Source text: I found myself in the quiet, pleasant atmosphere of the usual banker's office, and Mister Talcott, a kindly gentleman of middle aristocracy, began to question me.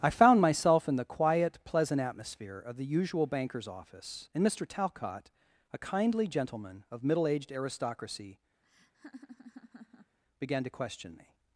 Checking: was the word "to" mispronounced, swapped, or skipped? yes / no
no